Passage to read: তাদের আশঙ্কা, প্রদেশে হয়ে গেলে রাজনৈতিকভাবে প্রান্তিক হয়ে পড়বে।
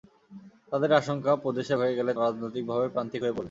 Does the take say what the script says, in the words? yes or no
yes